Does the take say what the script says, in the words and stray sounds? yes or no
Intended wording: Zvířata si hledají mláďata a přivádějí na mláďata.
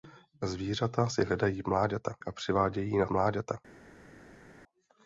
yes